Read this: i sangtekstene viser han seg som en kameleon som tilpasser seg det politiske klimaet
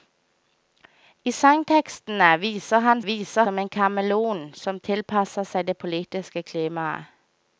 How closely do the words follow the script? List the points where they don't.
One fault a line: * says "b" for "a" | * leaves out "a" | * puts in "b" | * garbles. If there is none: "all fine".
* says "viser" for "seg"